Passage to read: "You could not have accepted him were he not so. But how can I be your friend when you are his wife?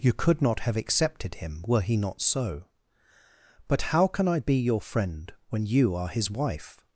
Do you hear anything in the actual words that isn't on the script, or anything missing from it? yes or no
no